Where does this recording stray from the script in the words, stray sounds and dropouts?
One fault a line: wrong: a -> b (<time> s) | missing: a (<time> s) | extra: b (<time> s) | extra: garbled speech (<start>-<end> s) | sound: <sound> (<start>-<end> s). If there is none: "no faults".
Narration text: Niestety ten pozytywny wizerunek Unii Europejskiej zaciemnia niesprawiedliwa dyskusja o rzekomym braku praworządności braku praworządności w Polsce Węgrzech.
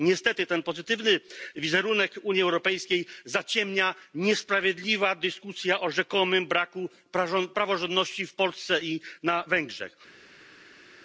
wrong: braku praworządności w Polsce -> w Polsce i na (8.3 s)